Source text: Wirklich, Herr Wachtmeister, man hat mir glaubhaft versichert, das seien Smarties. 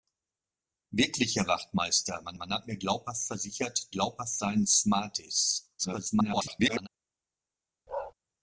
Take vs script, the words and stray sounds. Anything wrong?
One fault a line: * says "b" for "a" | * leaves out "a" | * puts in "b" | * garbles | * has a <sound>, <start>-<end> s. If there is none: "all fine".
* puts in "man"
* says "glaubhaft" for "das"
* garbles
* has a bark, 7.9-8.1 s